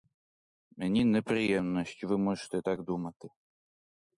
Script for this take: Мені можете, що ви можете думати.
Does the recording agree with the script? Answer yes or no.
no